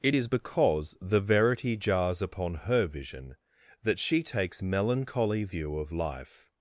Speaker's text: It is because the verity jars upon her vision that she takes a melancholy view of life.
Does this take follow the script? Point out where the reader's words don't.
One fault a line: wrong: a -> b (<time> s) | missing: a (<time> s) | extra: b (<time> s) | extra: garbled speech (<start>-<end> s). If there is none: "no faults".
missing: a (4.6 s)